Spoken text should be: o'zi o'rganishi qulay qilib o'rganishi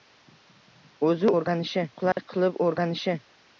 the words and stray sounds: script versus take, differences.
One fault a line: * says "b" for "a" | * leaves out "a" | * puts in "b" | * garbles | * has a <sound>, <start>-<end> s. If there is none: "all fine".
* has a dropout, 2.1-2.2 s